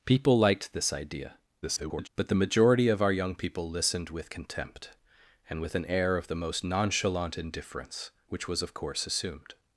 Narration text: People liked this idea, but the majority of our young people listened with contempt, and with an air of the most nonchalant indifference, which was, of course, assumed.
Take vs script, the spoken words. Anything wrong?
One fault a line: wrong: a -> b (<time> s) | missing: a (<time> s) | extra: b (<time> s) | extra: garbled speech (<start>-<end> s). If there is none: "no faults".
extra: garbled speech (1.6-2.1 s)